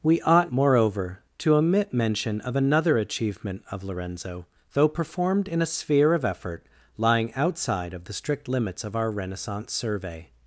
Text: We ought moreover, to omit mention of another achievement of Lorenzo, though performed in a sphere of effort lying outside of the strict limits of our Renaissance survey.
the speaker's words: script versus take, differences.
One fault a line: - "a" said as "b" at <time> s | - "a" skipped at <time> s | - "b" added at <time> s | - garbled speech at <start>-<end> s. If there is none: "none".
none